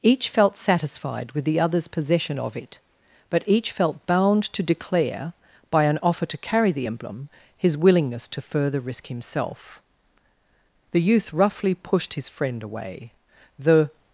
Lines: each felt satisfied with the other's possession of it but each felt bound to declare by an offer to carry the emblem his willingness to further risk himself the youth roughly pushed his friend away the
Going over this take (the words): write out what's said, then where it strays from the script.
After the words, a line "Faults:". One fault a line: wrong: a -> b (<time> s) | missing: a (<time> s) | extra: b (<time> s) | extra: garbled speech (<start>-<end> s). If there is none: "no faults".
each felt satisfied with the other's possession of it but each felt bound to declare by an offer to carry the emblem his willingness to further risk himself the youth roughly pushed his friend away the
Faults:
no faults